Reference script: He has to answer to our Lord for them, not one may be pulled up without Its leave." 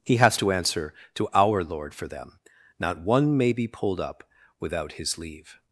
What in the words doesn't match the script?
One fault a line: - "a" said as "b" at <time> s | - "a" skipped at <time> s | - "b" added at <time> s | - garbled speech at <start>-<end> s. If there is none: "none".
- "Its" said as "His" at 4.9 s